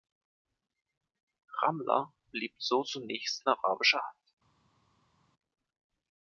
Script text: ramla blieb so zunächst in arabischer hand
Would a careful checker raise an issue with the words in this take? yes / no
no